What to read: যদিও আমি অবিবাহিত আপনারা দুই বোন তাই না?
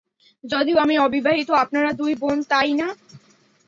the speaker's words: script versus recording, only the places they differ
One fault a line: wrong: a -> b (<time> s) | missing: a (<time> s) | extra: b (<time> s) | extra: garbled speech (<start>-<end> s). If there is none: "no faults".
no faults